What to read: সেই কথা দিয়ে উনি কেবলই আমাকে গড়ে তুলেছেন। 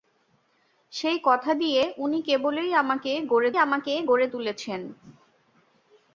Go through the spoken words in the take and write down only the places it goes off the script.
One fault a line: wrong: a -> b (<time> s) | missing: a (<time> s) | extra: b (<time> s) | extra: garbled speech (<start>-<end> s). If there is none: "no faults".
extra: আমাকে গড়ে (3.6 s)